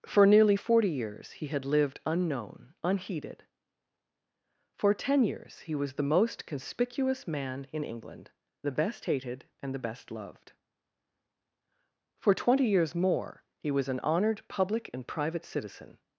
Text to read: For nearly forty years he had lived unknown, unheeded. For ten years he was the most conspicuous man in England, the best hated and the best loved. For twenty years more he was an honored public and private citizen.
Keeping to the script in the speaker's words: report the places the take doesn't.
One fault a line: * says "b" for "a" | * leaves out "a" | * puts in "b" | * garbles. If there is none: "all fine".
all fine